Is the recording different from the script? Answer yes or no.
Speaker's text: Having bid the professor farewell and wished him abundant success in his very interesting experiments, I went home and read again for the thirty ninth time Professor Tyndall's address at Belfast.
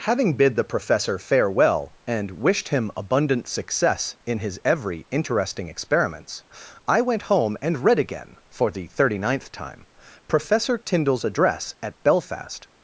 yes